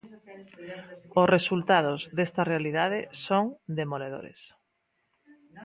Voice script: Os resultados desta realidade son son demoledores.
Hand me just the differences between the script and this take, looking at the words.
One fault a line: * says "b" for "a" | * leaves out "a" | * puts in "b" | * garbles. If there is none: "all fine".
* leaves out "son"